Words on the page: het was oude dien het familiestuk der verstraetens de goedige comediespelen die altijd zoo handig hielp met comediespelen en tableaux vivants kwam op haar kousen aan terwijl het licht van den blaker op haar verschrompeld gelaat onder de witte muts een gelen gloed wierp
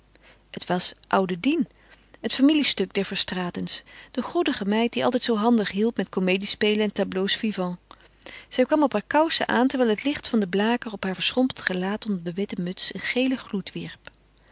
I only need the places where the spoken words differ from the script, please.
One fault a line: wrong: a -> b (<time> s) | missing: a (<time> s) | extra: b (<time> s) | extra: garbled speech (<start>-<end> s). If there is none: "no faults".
wrong: comediespelen -> meid (4.7 s)
extra: zij (8.5 s)